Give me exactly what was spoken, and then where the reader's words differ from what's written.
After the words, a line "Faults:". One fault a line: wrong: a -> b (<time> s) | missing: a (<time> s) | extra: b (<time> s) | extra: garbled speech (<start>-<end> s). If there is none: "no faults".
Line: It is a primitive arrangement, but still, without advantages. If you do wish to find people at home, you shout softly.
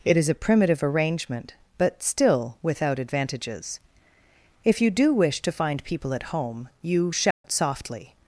It is a primitive arrangement, but still, without advantages. If you do wish to find people at home, you shout softly.
Faults:
no faults